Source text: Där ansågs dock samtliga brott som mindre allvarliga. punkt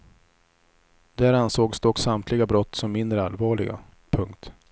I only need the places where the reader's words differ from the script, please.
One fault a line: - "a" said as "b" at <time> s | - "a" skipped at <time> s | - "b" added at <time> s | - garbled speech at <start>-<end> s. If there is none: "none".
none